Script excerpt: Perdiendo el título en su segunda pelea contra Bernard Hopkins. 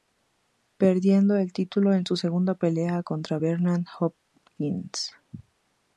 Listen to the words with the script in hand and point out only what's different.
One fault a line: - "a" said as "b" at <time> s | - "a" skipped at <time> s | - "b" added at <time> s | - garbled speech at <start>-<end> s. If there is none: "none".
none